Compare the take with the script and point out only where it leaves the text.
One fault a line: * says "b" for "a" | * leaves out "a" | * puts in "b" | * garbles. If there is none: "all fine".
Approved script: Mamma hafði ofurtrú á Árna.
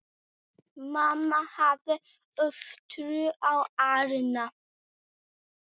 all fine